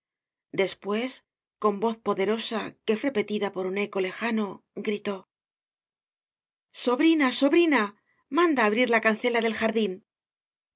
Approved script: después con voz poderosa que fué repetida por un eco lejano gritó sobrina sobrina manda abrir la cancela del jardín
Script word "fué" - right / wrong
wrong